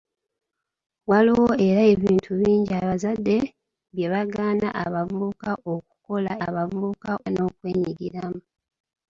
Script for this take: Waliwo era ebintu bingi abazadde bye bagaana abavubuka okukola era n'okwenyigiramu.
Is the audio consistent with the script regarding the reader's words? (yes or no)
no